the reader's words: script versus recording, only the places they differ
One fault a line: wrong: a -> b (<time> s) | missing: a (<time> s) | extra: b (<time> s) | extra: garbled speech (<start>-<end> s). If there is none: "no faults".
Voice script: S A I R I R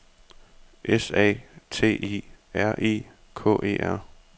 extra: T (1.7 s)
extra: K E (3.4 s)